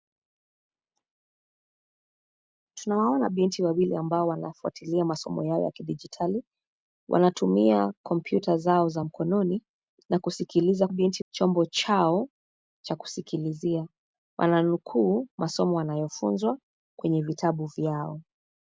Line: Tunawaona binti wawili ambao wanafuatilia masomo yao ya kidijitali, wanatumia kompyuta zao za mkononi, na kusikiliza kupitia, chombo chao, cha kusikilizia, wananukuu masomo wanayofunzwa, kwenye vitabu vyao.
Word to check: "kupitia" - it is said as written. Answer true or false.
false